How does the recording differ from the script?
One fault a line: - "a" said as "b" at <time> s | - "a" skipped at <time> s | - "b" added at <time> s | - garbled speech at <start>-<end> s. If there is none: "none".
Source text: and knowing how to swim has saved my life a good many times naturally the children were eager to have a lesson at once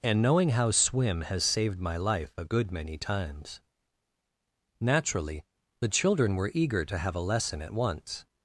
- "to" skipped at 0.7 s